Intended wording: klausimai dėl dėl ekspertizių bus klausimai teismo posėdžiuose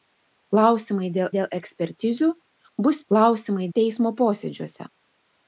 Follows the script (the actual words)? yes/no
yes